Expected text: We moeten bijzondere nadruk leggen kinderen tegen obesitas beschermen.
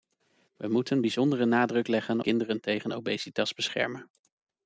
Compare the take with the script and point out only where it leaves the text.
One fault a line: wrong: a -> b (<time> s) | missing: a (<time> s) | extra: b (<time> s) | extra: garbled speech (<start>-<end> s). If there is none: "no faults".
no faults